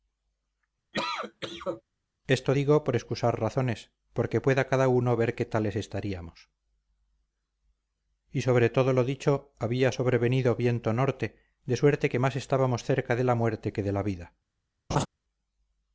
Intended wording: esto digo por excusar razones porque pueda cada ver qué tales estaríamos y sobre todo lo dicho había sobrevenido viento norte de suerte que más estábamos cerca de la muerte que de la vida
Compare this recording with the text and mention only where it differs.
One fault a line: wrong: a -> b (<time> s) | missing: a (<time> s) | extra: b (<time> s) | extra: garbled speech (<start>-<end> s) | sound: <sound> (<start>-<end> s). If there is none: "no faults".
sound: cough (0.9-1.8 s)
extra: uno (4.9 s)
sound: laugh (14.9-15.1 s)